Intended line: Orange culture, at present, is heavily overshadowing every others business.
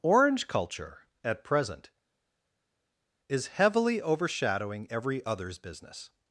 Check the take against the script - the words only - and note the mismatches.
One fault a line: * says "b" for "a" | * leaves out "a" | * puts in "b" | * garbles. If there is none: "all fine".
all fine